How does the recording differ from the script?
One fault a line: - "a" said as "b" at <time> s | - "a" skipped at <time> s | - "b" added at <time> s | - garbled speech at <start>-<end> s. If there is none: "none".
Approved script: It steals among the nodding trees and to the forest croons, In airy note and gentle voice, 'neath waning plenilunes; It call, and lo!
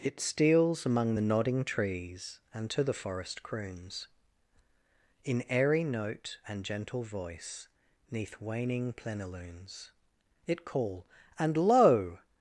none